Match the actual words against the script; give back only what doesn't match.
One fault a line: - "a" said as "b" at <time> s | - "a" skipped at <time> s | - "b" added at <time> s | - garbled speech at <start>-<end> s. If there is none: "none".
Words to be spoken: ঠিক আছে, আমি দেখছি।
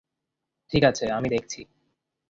none